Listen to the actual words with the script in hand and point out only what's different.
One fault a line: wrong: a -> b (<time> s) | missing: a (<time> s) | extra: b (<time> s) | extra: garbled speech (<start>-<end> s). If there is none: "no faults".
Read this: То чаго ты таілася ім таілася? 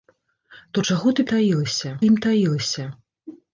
no faults